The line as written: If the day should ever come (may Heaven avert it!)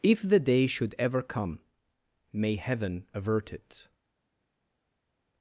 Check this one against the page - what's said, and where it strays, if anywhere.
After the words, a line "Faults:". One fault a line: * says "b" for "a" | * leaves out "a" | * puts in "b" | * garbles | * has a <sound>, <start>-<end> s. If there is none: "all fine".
If the day should ever come (may Heaven avert it!)
Faults:
all fine